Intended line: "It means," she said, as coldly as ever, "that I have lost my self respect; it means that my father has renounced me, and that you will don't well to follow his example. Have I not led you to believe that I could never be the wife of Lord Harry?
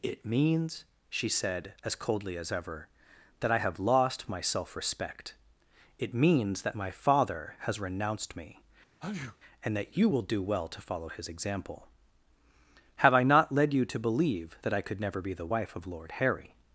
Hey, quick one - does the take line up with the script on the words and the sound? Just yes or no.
no